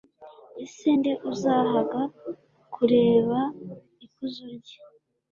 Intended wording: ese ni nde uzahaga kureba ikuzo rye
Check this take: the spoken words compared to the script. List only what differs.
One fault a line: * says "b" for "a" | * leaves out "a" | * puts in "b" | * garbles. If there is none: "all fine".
* leaves out "ni"